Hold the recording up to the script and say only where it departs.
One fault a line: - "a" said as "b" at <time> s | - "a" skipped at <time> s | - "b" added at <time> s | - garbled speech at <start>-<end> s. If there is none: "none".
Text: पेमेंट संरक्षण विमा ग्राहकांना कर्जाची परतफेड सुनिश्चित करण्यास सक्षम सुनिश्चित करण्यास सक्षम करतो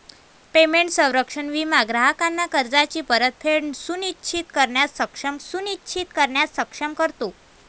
none